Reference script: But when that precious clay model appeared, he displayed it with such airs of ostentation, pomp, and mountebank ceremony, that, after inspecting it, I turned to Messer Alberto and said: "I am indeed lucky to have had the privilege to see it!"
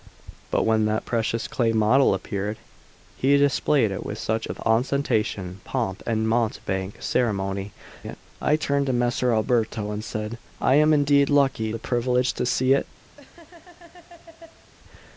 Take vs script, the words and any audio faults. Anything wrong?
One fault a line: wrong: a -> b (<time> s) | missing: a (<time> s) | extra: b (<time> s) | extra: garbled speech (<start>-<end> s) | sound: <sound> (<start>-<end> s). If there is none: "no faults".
missing: airs (4.5 s)
missing: that after inspecting (7.7 s)
missing: to have had (11.7 s)
sound: laugh (13.2-14.7 s)